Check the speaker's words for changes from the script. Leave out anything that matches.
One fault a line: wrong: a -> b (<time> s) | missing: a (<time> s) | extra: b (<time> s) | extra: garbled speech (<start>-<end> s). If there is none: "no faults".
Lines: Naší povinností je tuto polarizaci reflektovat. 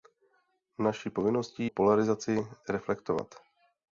missing: je tuto (1.7 s)